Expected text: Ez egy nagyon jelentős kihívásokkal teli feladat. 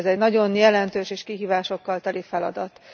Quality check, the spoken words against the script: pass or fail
fail